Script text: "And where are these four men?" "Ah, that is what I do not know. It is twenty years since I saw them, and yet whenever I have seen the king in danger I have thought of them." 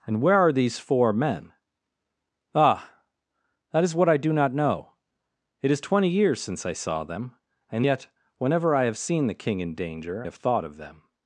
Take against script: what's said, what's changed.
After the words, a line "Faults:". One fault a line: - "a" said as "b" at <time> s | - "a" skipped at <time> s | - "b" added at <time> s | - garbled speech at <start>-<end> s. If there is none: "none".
"And where are these four men?" "Ah, that is what I do not know. It is twenty years since I saw them, and yet whenever I have seen the king in danger have thought of them."
Faults:
- "I" skipped at 10.2 s